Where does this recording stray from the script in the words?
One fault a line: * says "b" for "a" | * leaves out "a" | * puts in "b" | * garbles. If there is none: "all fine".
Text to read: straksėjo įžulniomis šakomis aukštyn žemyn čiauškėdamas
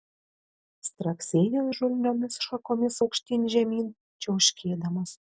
all fine